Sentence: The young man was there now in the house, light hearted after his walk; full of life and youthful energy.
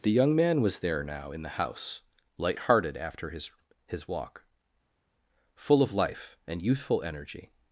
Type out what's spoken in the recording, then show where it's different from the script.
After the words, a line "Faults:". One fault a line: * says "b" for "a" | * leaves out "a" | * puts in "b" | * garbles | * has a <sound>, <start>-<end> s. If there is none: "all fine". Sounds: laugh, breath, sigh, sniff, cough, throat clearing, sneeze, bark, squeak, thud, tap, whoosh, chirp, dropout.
The young man was there now in the house, light hearted after his his walk; full of life and youthful energy.
Faults:
* puts in "his"